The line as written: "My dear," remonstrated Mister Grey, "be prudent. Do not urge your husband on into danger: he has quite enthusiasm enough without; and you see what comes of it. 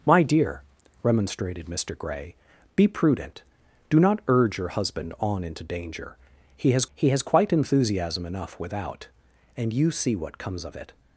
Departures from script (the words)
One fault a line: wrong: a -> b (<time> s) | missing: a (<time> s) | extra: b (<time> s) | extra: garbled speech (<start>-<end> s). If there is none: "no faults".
extra: he has (7.0 s)